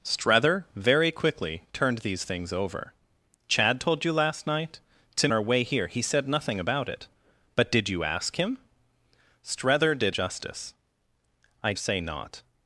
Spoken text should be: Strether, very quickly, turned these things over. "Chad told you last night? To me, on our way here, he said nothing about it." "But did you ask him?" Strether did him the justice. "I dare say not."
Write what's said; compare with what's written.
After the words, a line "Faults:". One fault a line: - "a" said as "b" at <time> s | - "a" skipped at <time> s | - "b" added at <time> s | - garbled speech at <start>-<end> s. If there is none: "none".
Strether, very quickly, turned these things over. "Chad told you last night? To our way here, he said nothing about it." "But did you ask him?" Strether did justice. "I say not."
Faults:
- "me on" skipped at 5.3 s
- "him the" skipped at 10.1 s
- "dare" skipped at 11.7 s